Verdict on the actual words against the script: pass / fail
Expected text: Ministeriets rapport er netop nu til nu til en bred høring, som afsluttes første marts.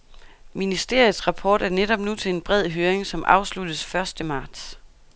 fail